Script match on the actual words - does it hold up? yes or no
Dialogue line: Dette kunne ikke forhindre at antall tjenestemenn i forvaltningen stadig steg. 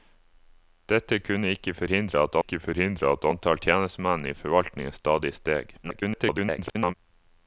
no